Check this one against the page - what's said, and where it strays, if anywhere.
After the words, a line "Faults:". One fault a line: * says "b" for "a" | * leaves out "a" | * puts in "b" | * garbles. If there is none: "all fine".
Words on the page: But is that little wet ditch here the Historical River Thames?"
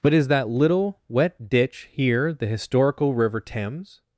But is that little wet ditch here the Historical River Thames?"
Faults:
all fine